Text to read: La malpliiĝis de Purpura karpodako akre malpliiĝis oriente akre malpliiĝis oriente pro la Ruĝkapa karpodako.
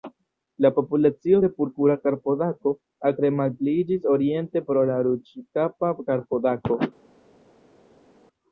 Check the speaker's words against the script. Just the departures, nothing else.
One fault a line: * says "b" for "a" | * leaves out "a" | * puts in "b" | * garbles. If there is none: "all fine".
* says "populacio" for "malpliiĝis"
* leaves out "akre malpliiĝis oriente"